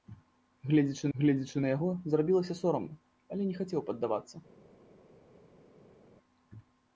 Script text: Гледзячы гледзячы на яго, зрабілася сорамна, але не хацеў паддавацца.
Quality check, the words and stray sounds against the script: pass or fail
pass